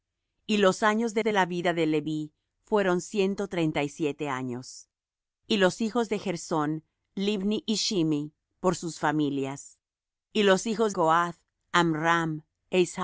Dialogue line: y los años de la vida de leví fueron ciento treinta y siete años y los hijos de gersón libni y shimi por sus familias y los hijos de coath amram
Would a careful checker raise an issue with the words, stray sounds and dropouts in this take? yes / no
yes